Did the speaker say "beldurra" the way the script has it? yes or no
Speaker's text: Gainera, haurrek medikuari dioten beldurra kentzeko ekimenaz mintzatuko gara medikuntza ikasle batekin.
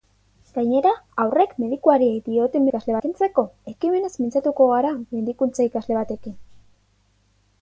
no